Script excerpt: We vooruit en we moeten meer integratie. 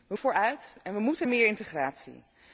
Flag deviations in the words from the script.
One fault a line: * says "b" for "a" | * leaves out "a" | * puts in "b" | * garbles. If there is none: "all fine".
all fine